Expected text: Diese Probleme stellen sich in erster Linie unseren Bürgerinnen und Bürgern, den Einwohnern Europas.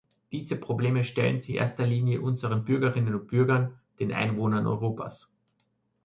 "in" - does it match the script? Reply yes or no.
no